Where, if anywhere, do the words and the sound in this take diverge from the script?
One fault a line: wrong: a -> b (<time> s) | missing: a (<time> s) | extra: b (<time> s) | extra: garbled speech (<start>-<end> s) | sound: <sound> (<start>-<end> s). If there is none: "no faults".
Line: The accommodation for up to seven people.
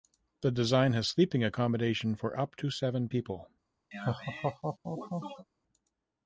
extra: design has sleeping (0.5 s)
sound: laugh (3.9-5.4 s)